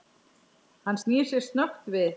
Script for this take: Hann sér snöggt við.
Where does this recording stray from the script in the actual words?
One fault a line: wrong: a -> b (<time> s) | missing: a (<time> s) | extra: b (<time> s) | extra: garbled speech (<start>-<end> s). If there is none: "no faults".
extra: snýr (1.0 s)